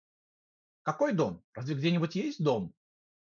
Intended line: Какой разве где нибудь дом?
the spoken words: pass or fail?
fail